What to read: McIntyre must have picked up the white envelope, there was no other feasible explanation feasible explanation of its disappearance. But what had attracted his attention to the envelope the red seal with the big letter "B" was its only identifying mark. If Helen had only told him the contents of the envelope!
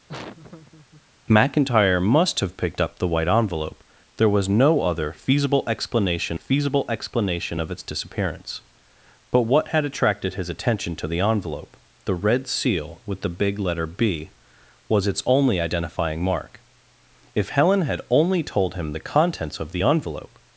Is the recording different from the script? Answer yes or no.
no